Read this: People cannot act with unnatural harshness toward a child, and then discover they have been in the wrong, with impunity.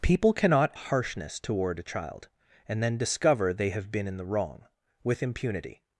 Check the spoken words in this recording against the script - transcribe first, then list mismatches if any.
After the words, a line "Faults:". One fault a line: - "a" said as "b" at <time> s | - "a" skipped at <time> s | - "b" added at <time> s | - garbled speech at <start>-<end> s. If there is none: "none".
People cannot harshness toward a child, and then discover they have been in the wrong, with impunity.
Faults:
- "act with unnatural" skipped at 0.7 s